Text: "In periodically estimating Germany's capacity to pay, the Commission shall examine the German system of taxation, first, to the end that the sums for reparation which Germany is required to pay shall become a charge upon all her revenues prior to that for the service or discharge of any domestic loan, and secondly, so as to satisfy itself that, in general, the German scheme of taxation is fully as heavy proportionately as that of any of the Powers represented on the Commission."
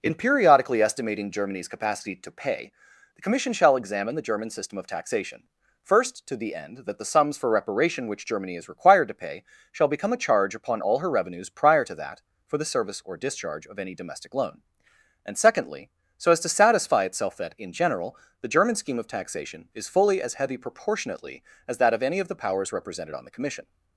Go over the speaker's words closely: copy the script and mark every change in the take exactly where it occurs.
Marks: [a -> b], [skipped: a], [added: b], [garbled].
"In periodically estimating Germany's capacity to pay, the Commission shall examine the German system of taxation, first, to the end that the sums for reparation which Germany is required to pay shall become a charge upon all her revenues prior to that for the service or discharge of any domestic loan, and secondly, so as to satisfy itself that, in general, the German scheme of taxation is fully as heavy proportionately as that of any of the Powers represented on the Commission."